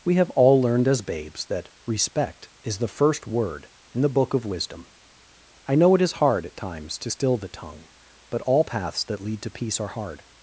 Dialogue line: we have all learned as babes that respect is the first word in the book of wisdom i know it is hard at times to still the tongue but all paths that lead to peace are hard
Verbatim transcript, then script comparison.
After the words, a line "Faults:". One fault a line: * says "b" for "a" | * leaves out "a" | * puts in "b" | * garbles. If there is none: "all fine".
we have all learned as babes that respect is the first word in the book of wisdom i know it is hard at times to still the tongue but all paths that lead to peace are hard
Faults:
all fine